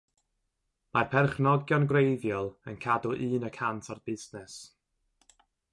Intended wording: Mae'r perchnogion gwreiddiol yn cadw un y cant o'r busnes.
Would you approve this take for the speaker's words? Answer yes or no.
yes